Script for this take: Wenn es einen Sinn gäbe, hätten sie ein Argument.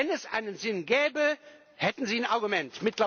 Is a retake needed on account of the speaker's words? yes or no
no